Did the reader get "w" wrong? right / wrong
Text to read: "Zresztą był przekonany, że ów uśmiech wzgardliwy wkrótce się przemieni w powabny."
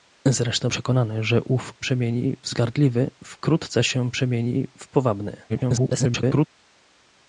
right